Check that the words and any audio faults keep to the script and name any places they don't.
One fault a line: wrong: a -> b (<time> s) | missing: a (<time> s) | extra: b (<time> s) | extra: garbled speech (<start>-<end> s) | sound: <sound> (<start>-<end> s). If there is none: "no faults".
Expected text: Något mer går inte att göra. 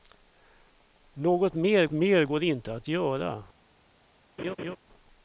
extra: mer (1.9 s)
sound: laugh (4.4-4.8 s)